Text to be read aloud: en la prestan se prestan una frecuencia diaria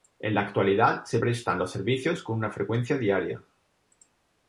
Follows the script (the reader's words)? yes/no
no